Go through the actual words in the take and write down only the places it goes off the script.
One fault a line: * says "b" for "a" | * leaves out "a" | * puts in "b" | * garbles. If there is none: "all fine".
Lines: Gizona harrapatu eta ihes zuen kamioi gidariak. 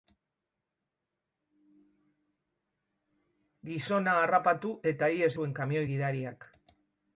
all fine